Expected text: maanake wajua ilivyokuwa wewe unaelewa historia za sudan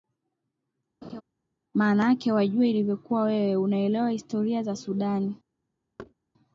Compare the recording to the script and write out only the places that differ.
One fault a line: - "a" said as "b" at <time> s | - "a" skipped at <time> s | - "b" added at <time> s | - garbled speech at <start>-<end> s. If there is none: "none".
none